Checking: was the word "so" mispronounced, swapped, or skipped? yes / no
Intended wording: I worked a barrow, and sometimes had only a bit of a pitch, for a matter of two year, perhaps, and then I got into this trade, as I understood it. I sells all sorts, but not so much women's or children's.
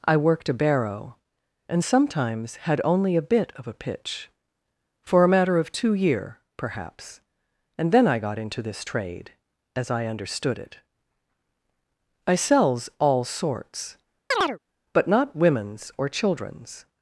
yes